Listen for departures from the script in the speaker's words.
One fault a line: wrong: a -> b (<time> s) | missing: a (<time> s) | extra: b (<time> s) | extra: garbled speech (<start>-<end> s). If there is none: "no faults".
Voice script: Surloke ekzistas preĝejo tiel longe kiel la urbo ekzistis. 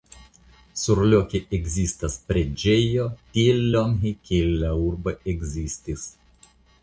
no faults